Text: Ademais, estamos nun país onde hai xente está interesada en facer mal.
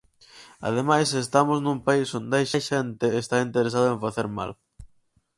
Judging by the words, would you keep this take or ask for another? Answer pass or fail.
fail